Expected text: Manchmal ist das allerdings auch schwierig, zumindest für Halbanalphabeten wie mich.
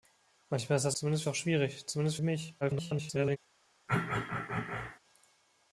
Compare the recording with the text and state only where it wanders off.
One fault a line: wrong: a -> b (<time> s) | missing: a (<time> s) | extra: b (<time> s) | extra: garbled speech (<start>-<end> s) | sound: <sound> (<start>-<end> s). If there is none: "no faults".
wrong: allerdings -> zumindest (0.9 s)
missing: für Halbanalphabeten (2.2 s)
extra: garbled speech (2.6-3.4 s)
sound: throat clearing (3.9-5.0 s)